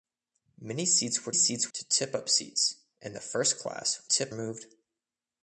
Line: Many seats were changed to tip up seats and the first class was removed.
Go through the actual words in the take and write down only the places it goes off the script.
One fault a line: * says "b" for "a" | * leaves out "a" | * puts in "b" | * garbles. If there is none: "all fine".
* says "seats" for "changed"
* says "tip" for "was"